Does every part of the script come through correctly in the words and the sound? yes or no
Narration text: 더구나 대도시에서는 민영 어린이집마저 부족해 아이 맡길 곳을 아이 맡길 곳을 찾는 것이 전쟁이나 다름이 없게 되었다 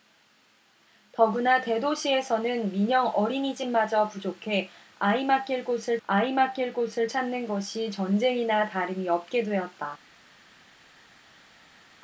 yes